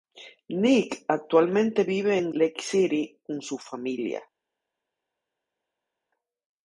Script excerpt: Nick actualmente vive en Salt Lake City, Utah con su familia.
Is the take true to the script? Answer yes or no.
no